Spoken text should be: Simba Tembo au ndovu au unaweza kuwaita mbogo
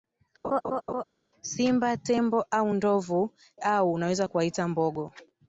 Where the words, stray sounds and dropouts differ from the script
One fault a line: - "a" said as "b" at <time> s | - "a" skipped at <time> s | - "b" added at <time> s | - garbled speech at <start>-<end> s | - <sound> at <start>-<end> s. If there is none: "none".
- laugh at 0.4-1.0 s